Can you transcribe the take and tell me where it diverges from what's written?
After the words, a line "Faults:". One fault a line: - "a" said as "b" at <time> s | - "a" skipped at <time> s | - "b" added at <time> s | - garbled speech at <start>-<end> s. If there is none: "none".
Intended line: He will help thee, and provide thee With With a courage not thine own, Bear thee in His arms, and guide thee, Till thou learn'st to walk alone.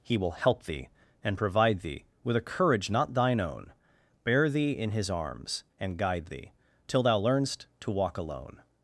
He will help thee, and provide thee With a courage not thine own, Bear thee in His arms, and guide thee, Till thou learn'st to walk alone.
Faults:
- "With" skipped at 2.4 s